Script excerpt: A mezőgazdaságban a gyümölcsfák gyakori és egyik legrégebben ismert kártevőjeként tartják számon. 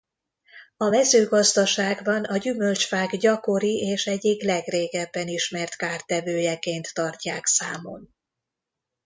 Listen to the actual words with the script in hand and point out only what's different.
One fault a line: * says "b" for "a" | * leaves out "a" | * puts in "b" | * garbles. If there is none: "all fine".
all fine